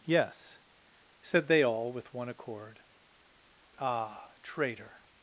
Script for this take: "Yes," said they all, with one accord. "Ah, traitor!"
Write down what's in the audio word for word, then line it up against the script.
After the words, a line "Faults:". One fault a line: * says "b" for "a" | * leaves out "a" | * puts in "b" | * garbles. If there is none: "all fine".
"Yes," said they all, with one accord. "Ah, traitor!"
Faults:
all fine